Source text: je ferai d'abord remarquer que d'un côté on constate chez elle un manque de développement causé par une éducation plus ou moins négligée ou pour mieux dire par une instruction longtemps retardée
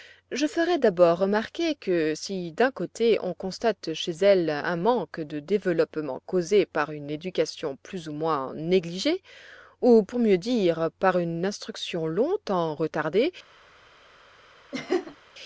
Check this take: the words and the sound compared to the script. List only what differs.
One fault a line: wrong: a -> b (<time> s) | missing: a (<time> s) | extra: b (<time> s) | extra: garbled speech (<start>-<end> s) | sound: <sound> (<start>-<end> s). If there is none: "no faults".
extra: si (2.1 s)
sound: laugh (14.7-15.2 s)